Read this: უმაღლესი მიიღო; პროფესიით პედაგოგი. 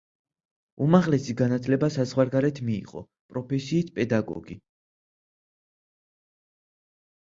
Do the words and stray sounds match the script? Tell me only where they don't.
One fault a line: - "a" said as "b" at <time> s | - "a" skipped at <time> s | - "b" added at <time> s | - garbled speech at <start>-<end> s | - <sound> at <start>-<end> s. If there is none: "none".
- "განათლება საზღვარგარეთ" added at 1.4 s